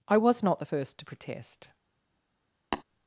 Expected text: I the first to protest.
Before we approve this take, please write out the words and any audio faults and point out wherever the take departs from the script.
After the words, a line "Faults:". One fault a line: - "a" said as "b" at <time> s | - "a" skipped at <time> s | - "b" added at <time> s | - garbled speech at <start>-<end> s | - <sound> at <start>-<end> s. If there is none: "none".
I was not the first to protest.
Faults:
- "was not" added at 0.2 s
- tap at 2.7-2.8 s